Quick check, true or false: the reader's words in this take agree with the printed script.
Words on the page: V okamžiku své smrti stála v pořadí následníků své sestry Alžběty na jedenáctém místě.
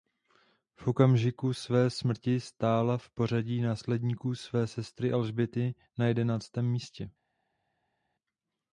true